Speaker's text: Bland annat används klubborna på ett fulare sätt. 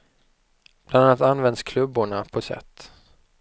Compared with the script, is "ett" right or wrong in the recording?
wrong